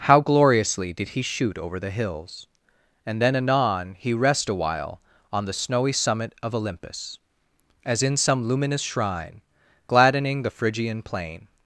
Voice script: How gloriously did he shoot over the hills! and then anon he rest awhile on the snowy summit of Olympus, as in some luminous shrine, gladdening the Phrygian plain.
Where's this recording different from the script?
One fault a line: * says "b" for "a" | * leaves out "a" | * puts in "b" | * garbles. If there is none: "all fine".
all fine